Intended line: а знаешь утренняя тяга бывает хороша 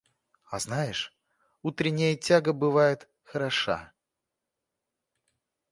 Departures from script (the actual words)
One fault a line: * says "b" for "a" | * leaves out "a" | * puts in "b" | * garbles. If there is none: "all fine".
all fine